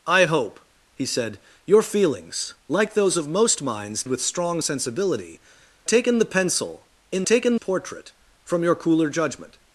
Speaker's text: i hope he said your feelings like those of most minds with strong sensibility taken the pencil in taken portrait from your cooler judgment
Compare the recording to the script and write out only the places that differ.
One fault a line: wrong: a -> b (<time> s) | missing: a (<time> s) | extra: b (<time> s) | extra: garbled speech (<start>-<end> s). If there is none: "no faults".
no faults